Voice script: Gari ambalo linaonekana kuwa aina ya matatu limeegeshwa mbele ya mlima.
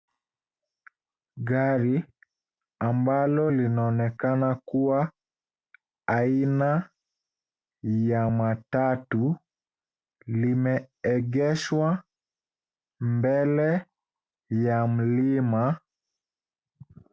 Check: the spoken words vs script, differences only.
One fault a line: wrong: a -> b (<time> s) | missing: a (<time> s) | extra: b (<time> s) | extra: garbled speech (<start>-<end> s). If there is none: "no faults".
no faults